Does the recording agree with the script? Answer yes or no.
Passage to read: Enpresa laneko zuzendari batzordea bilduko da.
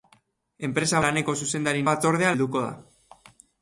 yes